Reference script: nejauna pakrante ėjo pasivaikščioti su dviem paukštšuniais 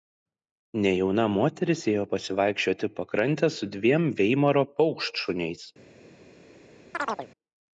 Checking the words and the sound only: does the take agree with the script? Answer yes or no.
no